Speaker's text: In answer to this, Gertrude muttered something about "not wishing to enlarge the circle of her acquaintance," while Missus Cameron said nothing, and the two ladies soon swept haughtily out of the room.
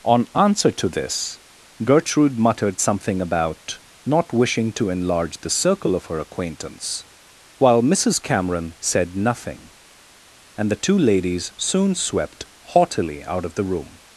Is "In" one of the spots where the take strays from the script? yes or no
yes